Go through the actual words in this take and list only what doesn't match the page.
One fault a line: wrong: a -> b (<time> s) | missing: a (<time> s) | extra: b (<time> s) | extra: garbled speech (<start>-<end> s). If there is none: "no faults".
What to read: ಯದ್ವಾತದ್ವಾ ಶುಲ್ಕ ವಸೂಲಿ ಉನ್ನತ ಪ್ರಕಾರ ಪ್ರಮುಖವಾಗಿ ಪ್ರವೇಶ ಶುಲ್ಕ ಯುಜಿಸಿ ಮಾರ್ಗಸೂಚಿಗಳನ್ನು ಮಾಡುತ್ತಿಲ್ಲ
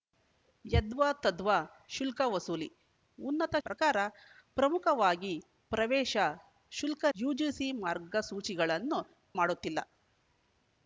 no faults